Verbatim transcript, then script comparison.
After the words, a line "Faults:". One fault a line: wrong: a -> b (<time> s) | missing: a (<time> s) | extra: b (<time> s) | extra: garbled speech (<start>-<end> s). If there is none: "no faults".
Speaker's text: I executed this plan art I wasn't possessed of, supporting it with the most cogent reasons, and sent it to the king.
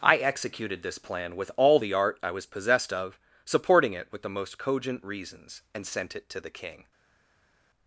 I executed this plan with all the art I was possessed of, supporting it with the most cogent reasons, and sent it to the king.
Faults:
extra: with all the (1.4 s)
wrong: wasn't -> was (2.3 s)